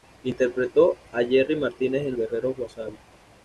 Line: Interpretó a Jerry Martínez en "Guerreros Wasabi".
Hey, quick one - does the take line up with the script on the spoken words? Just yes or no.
yes